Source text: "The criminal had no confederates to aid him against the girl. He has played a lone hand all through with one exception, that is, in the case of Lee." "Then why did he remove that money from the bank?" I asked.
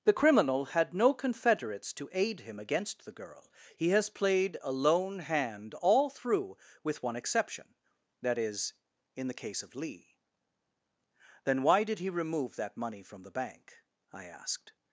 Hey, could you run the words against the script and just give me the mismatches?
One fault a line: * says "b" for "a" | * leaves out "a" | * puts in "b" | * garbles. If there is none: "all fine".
all fine